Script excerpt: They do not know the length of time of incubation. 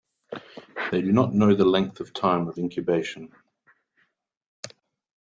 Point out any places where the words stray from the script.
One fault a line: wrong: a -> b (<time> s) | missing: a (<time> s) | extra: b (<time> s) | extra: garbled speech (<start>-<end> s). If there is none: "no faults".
no faults